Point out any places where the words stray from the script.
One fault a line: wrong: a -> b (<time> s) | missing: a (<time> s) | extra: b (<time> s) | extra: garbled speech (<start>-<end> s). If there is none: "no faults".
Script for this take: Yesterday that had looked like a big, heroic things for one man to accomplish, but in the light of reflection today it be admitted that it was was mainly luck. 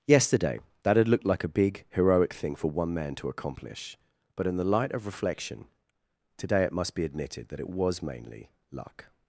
wrong: things -> thing (2.3 s)
extra: must (6.7 s)
missing: was (8.0 s)